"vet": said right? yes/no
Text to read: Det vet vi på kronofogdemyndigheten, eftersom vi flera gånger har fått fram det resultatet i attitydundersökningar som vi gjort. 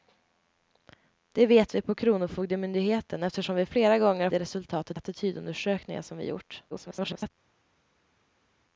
yes